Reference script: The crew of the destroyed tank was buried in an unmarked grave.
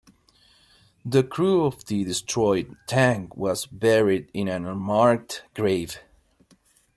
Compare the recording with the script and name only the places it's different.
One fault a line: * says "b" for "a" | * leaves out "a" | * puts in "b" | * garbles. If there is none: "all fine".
all fine